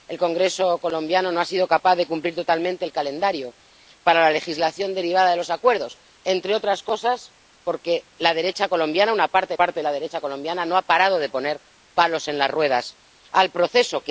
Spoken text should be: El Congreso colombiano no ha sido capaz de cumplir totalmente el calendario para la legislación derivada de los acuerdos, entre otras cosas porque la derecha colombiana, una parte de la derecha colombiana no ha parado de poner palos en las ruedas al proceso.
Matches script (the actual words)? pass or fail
fail